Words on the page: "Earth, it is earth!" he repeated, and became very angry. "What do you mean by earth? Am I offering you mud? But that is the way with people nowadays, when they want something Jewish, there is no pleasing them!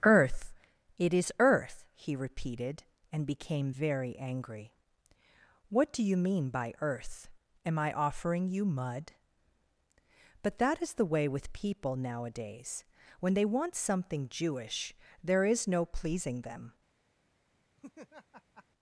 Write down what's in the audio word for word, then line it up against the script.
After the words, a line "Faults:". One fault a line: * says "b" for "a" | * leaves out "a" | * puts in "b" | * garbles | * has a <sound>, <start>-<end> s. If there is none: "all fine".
"Earth, it is earth!" he repeated, and became very angry. "What do you mean by earth? Am I offering you mud? But that is the way with people nowadays, when they want something Jewish, there is no pleasing them!
Faults:
* has a laugh, 17.8-18.7 s